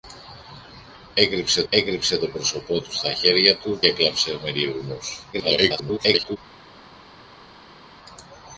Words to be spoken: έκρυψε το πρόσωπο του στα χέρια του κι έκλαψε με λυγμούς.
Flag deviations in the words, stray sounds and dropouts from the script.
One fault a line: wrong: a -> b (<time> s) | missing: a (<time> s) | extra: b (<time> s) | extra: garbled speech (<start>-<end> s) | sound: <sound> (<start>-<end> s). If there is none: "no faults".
extra: έκρυψε (1.7 s)
missing: κι (3.8 s)
extra: garbled speech (5.3-6.4 s)